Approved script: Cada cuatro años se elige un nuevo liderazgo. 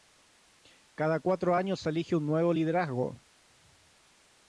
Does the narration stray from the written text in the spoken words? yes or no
no